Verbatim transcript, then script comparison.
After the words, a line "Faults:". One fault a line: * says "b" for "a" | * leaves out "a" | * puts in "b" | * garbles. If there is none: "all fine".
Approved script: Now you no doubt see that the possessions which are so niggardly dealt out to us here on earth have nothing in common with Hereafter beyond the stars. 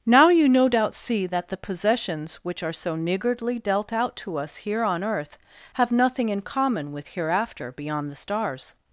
Now you no doubt see that the possessions which are so niggardly dealt out to us here on earth have nothing in common with Hereafter beyond the stars.
Faults:
all fine